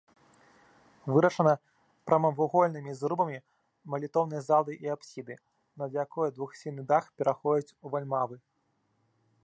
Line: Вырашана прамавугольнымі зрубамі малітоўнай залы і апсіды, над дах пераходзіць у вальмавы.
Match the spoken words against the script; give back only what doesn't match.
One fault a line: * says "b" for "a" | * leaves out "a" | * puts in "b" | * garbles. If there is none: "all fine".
* puts in "якой двухсхільны"